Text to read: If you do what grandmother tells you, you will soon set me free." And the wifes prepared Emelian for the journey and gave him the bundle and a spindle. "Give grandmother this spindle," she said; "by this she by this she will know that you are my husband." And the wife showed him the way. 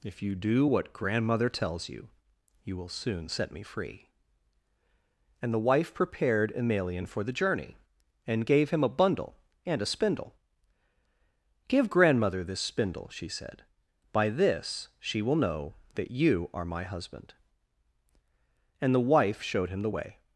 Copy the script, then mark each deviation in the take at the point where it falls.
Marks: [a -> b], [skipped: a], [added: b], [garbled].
If you do what grandmother tells you, you will soon set me free." And the [wifes -> wife] prepared Emelian for the journey and gave him [the -> a] bundle and a spindle. "Give grandmother this spindle," she said; "by this she [skipped: by this she] will know that you are my husband." And the wife showed him the way.